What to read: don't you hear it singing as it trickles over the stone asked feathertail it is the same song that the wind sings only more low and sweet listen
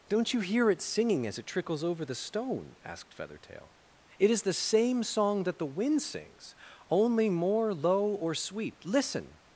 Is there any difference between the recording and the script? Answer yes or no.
yes